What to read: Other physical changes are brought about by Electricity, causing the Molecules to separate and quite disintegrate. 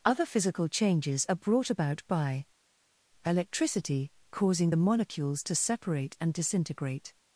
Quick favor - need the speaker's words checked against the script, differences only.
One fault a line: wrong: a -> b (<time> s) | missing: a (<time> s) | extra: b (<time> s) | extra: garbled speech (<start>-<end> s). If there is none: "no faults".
missing: quite (6.3 s)